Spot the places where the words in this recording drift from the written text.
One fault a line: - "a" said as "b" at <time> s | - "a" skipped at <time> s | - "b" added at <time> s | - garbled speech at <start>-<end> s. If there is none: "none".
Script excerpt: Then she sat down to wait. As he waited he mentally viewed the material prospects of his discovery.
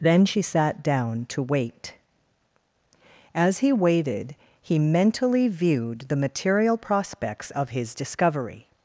none